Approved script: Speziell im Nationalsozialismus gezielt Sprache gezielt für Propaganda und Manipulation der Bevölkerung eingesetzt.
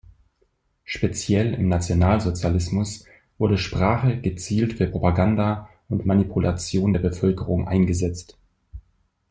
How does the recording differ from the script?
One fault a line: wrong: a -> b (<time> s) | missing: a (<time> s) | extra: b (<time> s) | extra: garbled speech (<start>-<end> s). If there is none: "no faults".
wrong: gezielt -> wurde (3.4 s)